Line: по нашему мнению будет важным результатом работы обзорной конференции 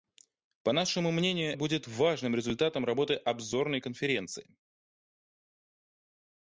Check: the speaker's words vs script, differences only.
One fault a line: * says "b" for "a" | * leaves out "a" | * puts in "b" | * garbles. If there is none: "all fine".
all fine